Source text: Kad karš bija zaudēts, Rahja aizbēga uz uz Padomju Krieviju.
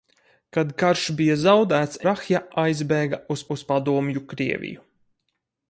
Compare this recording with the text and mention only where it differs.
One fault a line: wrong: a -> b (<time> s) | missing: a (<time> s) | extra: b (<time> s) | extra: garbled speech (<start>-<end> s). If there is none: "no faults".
no faults